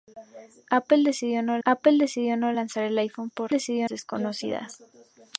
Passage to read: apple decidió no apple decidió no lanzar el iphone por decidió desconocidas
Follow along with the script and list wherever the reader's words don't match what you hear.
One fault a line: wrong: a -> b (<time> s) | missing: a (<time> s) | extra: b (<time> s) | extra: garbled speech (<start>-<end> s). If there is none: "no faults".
no faults